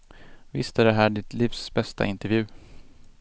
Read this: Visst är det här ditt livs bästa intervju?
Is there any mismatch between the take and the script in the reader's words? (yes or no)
no